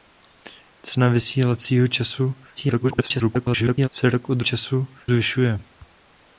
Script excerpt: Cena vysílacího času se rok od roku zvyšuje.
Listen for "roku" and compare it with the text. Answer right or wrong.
wrong